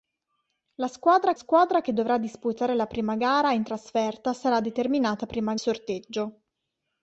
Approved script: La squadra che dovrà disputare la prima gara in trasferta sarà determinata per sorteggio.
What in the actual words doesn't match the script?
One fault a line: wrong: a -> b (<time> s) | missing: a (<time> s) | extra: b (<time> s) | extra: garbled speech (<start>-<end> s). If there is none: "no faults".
extra: squadra (1.3 s)
wrong: per -> prima (5.3 s)